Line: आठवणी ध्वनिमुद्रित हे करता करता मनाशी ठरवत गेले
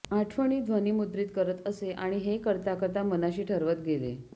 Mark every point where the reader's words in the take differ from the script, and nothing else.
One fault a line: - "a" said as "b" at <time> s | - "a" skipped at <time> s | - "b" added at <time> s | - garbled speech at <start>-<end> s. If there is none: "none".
- "करत असे आणि" added at 1.4 s